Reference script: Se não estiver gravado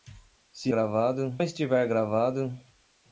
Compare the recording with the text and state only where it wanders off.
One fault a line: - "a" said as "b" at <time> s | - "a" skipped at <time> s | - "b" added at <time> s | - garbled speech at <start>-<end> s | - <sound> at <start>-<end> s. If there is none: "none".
- "não" said as "gravado" at 0.7 s